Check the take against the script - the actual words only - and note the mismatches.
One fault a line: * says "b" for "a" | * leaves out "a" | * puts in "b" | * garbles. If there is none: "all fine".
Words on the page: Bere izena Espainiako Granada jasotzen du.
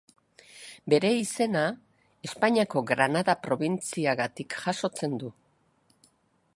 * puts in "probintziagatik"